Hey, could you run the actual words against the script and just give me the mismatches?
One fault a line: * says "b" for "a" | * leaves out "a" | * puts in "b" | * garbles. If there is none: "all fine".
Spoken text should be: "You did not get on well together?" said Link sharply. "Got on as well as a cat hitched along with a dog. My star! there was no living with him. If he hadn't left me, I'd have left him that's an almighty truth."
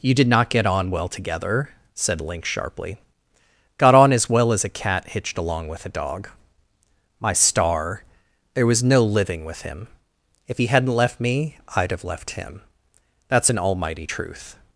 all fine